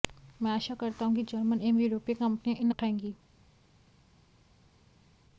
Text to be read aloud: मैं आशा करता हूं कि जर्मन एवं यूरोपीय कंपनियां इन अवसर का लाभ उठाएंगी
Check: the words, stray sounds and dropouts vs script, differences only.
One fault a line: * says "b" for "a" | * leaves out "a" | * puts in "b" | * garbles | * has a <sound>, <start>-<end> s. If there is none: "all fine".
* leaves out "अवसर का लाभ"